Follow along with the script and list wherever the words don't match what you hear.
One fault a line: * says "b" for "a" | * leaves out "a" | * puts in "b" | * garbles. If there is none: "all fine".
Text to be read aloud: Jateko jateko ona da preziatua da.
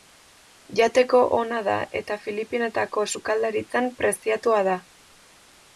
* leaves out "jateko"
* puts in "eta Filipinetako sukaldaritzan"